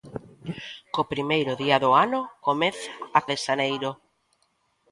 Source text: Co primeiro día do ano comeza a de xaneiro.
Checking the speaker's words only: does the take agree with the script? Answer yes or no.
yes